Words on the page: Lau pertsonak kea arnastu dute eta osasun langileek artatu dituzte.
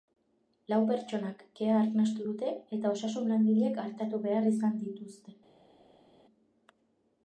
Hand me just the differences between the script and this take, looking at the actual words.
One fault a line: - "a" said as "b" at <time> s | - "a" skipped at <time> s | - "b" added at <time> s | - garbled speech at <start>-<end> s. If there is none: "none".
- "behar izan" added at 4.3 s